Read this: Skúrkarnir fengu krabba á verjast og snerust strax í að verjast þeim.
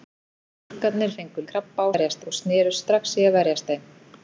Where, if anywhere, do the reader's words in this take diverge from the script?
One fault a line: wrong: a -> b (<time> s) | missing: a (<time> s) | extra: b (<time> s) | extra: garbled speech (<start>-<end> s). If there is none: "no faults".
no faults